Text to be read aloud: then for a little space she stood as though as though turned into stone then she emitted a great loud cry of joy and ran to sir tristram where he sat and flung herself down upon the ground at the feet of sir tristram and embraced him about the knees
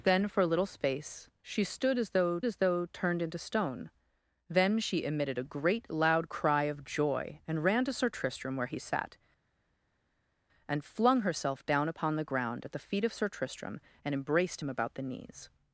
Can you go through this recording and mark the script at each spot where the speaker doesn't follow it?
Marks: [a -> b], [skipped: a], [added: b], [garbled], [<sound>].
then for a little space she stood as though as though turned into stone then she emitted a great loud cry of joy and ran to sir tristram where he sat and flung herself down upon the ground at the feet of sir tristram and embraced him about the knees